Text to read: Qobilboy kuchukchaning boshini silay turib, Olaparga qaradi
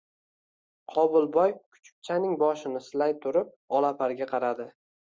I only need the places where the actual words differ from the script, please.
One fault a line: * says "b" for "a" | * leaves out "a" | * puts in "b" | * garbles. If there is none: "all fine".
all fine